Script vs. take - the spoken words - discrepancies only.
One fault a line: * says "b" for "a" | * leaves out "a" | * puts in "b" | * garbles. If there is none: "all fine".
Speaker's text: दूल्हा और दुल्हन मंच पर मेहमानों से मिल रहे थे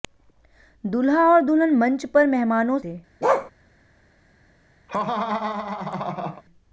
* leaves out "से मिल रहे"